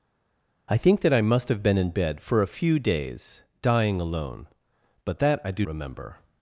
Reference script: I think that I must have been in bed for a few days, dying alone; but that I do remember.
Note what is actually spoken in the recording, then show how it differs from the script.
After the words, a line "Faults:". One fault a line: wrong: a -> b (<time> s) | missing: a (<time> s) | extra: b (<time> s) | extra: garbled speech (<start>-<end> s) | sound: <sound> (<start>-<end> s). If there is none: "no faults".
I think that I must have been in bed for a few days, dying alone; but that I do remember.
Faults:
no faults